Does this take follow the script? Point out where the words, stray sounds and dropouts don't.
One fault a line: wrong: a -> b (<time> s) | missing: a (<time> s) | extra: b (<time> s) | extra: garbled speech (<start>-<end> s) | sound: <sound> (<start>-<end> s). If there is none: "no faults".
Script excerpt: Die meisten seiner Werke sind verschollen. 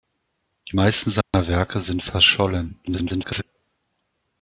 sound: dropout (1.2-1.3 s)
extra: garbled speech (2.9-3.4 s)